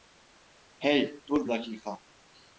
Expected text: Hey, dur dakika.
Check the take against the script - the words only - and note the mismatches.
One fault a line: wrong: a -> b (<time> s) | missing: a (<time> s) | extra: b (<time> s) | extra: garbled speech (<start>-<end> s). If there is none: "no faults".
no faults